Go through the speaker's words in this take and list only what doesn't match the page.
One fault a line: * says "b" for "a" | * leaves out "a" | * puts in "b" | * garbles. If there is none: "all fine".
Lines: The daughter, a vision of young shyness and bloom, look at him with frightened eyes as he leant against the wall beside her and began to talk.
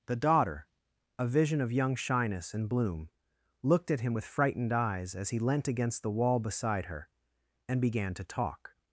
* says "looked" for "look"